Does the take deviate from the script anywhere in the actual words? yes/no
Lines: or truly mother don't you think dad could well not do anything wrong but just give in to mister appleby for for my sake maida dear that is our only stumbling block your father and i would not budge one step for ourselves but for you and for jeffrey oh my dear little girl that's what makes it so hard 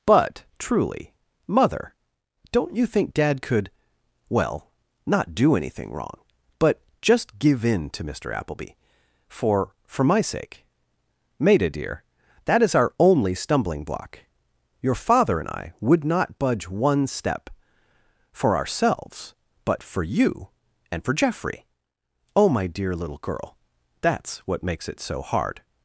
yes